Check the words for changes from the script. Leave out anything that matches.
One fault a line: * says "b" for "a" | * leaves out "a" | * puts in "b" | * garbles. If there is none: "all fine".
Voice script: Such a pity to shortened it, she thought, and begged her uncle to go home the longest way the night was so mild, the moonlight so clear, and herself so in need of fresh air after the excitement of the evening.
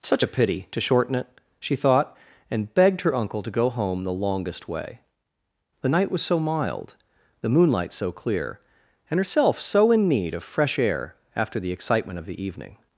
* says "shorten" for "shortened"